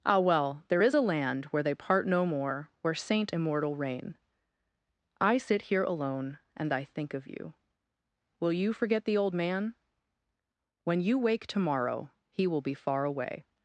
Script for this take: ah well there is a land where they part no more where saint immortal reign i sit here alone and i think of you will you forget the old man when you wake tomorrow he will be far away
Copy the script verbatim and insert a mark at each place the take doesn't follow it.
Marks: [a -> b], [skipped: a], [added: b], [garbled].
ah well there is a land where they part no more where saint immortal reign i sit here alone and i think of you will you forget the old man when you wake tomorrow he will be far away